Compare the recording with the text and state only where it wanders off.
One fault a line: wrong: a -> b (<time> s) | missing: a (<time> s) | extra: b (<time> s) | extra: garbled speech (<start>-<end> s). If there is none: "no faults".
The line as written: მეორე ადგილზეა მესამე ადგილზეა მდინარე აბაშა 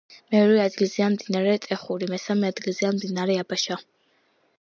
extra: მდინარე ტეხური (1.1 s)